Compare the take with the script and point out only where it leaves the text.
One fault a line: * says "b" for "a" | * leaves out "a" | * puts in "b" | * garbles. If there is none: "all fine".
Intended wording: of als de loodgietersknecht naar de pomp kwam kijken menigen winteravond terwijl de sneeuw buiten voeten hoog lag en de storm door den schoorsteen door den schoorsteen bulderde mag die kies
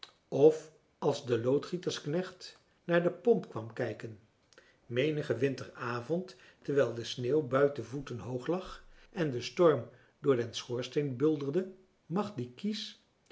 * leaves out "door den schoorsteen"